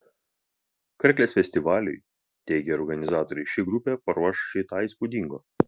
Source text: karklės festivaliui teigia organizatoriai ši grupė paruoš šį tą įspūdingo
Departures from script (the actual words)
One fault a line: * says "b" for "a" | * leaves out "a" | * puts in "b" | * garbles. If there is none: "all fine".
all fine